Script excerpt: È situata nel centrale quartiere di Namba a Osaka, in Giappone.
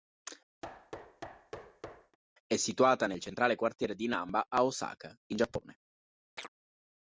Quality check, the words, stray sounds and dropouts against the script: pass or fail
fail